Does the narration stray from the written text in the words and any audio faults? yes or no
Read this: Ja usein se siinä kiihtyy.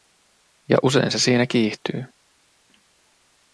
no